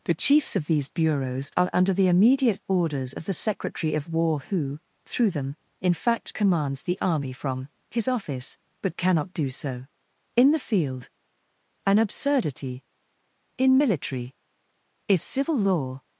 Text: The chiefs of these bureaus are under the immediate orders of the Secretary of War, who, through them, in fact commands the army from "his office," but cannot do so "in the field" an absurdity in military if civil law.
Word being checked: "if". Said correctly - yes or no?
yes